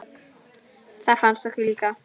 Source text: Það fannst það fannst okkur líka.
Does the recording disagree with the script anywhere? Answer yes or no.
yes